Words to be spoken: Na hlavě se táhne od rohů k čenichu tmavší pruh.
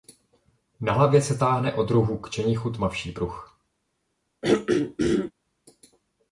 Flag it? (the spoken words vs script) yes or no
no